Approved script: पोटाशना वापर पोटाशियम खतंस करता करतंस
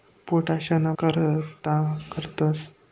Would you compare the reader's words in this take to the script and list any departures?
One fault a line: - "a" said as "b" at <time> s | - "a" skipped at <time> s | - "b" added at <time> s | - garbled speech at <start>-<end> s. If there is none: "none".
- "वापर पोटाशियम खतंस" skipped at 0.9 s